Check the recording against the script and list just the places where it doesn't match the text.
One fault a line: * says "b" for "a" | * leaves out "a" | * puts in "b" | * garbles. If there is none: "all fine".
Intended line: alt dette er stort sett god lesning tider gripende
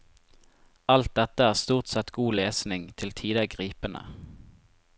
* puts in "til"